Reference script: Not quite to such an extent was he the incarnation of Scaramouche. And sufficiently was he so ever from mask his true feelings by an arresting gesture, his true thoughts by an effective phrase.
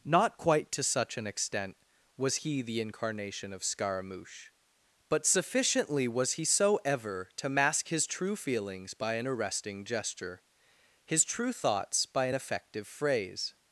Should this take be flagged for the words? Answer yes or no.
yes